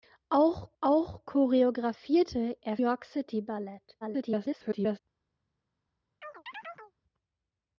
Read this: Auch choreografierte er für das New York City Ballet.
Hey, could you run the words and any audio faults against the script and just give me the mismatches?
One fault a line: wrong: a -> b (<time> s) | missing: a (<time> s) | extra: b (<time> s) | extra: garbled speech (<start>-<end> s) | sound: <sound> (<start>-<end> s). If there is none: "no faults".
extra: auch (0.8 s)
missing: für das New (2.8 s)
extra: garbled speech (4.0-5.0 s)
sound: chirp (6.2-6.9 s)